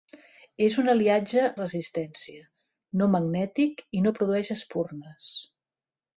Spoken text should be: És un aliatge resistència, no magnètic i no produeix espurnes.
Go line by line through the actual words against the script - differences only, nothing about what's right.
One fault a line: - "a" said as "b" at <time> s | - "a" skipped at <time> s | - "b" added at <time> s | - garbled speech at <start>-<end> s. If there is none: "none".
none